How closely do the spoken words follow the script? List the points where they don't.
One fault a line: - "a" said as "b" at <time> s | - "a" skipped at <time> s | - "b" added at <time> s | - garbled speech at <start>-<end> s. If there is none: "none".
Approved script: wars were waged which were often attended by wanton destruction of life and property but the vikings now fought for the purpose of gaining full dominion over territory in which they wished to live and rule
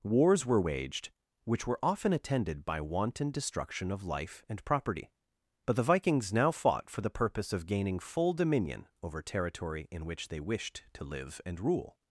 none